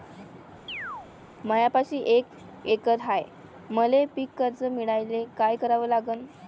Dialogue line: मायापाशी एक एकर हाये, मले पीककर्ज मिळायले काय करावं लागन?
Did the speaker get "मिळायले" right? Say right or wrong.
right